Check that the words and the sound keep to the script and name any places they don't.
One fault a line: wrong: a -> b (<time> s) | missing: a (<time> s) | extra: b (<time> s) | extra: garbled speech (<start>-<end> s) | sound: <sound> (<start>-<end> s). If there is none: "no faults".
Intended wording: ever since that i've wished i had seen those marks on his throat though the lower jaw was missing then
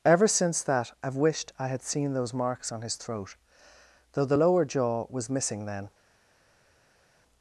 no faults